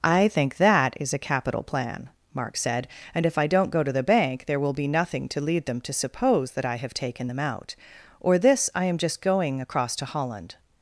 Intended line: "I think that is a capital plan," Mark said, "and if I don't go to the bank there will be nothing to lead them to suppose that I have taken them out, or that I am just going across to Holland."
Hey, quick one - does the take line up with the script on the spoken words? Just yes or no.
no